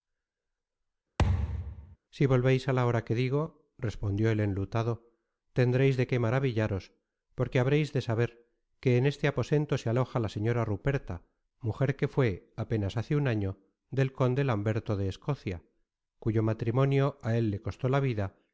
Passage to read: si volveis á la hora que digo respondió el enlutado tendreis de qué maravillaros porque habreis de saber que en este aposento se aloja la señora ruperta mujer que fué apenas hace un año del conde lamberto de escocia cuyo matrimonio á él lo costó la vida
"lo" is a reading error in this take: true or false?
true